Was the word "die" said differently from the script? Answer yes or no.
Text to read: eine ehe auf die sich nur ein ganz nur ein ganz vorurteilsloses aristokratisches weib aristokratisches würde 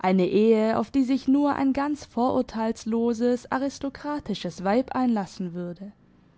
no